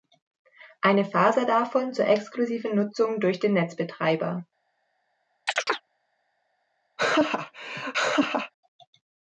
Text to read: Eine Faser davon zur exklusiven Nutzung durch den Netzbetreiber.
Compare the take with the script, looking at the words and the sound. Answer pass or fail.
fail